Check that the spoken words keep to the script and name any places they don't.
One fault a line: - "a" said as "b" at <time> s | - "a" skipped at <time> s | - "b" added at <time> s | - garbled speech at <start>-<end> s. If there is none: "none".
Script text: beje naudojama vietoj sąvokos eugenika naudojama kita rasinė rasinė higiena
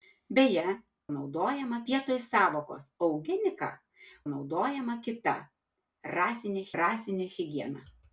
none